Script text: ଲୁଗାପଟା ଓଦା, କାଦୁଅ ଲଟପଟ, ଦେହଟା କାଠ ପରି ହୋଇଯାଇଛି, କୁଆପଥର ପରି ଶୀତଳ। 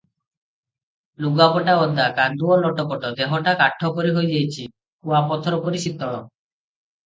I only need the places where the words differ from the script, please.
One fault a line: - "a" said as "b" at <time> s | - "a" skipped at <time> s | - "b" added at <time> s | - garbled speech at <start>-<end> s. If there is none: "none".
none